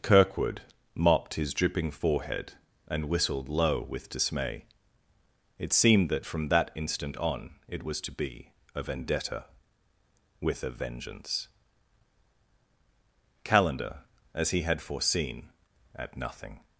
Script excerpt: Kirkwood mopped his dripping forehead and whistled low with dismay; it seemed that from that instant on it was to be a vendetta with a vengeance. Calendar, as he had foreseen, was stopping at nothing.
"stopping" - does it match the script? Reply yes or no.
no